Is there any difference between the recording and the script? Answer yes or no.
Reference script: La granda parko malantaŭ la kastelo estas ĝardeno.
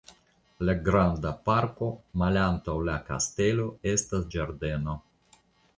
no